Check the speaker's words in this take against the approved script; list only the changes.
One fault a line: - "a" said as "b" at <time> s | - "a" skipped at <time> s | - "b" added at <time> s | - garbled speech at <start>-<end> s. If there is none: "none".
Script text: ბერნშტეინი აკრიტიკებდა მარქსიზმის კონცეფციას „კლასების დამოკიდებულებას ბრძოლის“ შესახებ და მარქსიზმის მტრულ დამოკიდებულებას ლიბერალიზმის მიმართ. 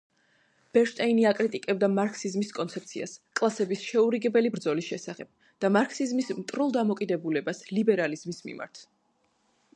- "დამოკიდებულებას" said as "შეურიგებელი" at 3.9 s